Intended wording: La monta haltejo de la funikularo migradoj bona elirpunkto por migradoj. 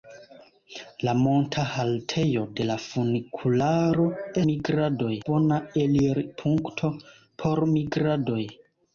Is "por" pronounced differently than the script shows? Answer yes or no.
no